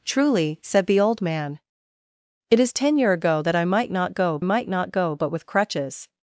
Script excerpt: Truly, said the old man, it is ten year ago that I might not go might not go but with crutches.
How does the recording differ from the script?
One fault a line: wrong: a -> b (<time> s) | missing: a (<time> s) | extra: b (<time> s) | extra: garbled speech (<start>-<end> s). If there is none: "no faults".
no faults